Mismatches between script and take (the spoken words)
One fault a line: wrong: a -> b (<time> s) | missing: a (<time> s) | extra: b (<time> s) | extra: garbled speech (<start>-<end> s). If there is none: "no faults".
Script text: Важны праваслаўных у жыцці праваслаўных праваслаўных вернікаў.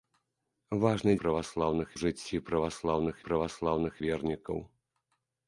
no faults